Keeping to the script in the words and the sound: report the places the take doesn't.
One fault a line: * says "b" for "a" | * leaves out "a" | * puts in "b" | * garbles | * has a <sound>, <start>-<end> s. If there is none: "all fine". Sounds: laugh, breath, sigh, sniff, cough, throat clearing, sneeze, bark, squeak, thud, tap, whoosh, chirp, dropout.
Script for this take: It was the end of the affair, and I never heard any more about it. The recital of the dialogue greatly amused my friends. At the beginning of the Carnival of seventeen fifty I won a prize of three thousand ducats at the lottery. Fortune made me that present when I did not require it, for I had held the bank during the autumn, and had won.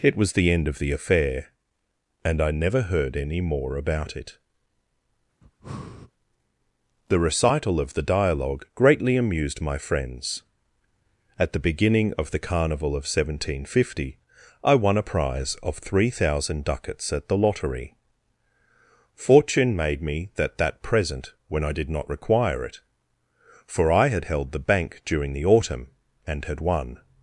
* has a breath, 5.4-6.1 s
* puts in "that"